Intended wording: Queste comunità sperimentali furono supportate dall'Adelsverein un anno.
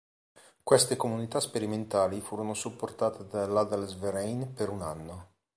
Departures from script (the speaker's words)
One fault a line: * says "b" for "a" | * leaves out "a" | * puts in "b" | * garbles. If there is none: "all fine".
* puts in "per"